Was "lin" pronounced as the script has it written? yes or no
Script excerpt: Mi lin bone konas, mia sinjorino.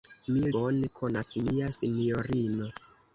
no